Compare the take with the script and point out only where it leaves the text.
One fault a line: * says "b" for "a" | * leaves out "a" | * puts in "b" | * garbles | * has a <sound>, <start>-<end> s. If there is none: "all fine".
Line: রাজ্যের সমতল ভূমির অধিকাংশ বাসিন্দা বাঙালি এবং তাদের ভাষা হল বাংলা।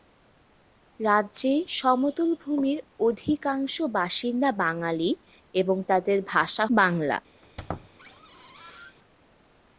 * leaves out "হল"
* has a squeak, 7.4-9.0 s